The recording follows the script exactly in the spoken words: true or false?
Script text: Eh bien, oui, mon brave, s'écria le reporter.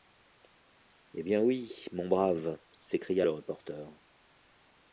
true